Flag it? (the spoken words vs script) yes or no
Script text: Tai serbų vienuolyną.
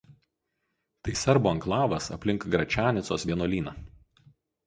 yes